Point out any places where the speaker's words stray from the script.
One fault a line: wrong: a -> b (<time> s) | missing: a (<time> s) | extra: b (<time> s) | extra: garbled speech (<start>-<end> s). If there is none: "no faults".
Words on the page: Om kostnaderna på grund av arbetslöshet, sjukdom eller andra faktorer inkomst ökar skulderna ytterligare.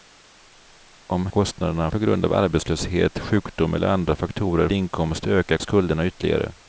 no faults